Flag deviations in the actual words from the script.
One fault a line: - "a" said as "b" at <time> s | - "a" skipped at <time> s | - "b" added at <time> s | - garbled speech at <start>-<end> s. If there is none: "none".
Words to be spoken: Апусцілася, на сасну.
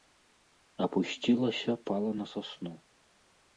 - "пала" added at 1.9 s